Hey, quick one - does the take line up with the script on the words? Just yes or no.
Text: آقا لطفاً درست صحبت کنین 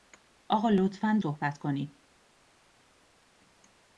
no